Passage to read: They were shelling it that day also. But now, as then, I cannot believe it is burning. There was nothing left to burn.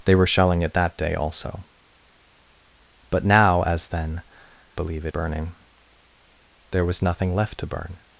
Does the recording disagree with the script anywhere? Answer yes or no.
yes